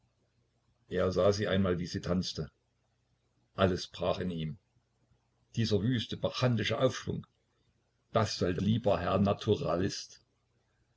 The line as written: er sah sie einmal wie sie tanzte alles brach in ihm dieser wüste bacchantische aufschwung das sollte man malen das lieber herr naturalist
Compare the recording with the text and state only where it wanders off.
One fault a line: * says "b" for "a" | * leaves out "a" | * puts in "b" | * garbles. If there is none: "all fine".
* leaves out "man malen das"